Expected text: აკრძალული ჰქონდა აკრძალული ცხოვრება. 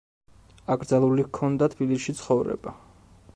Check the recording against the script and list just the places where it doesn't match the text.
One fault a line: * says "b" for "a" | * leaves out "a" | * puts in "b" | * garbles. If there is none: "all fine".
* says "თბილისში" for "აკრძალული"